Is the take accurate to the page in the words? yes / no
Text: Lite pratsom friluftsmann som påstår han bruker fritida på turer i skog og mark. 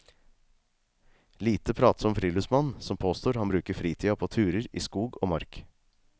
yes